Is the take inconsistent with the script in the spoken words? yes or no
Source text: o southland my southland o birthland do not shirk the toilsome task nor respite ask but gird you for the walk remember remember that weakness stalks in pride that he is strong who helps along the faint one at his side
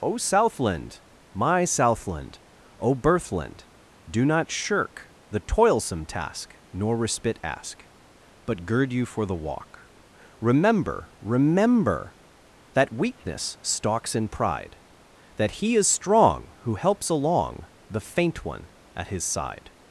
no